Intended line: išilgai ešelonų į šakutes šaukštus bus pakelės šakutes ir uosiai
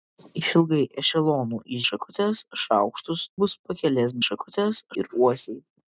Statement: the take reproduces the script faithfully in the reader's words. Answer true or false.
true